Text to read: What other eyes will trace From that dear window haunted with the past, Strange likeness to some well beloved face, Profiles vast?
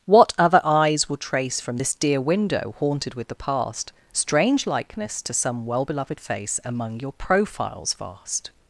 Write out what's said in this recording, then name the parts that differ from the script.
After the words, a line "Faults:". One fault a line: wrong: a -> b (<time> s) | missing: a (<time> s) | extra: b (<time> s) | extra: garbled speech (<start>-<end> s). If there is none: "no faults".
What other eyes will trace From this dear window haunted with the past, Strange likeness to some well beloved face, Among your profiles vast?
Faults:
wrong: that -> this (1.8 s)
extra: Among your (6.6 s)